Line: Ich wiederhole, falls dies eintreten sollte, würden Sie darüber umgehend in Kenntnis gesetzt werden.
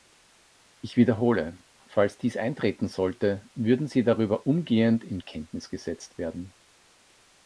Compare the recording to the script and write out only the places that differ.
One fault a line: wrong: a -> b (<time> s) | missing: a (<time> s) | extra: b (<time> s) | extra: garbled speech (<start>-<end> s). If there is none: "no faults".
no faults